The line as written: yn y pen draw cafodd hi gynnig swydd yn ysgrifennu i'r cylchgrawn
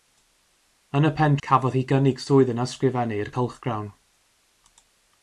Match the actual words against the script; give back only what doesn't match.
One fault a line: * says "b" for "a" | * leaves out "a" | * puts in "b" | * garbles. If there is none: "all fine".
* leaves out "draw"